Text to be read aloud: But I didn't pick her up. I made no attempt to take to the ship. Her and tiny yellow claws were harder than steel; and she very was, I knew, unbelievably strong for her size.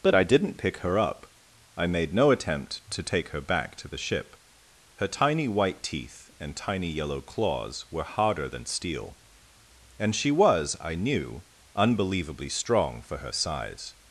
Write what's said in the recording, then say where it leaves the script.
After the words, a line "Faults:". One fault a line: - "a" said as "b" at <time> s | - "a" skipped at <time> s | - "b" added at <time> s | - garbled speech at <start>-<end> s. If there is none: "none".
But I didn't pick her up. I made no attempt to take her back to the ship. Her tiny white teeth and tiny yellow claws were harder than steel; and she was, I knew, unbelievably strong for her size.
Faults:
- "her back" added at 3.3 s
- "tiny white teeth" added at 5.1 s
- "very" skipped at 10.3 s